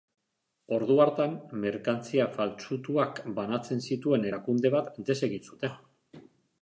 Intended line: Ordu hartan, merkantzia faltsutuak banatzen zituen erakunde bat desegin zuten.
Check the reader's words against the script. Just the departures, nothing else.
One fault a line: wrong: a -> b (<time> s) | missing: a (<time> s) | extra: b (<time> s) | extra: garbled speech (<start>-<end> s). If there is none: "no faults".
no faults